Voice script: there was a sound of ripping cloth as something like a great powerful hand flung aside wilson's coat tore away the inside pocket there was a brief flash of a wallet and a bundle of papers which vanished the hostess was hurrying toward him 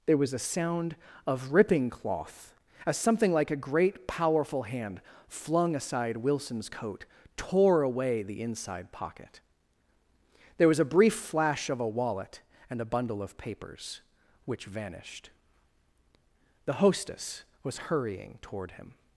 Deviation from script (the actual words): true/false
false